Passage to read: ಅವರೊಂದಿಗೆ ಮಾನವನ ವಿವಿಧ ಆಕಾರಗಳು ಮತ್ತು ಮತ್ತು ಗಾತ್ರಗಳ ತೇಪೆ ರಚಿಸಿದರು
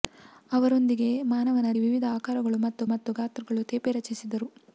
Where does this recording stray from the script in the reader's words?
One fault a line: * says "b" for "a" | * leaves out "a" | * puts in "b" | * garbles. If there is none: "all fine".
all fine